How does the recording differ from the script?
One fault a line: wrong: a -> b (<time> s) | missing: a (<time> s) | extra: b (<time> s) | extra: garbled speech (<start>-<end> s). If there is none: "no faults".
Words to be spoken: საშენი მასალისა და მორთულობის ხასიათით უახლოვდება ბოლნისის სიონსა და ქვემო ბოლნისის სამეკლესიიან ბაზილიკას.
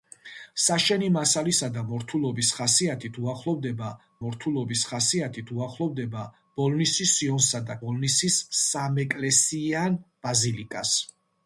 extra: მორთულობის ხასიათით უახლოვდება (4.2 s)
missing: ქვემო (7.8 s)